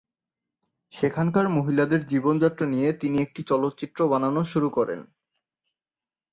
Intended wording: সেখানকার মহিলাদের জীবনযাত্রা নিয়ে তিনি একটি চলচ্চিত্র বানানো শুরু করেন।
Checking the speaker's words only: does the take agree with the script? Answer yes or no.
yes